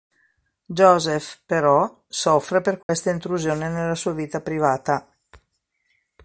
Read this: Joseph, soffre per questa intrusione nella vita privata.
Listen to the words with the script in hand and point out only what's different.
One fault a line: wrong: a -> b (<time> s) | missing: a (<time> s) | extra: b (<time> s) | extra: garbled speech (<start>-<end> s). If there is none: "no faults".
extra: però (1.4 s)
extra: sua (3.9 s)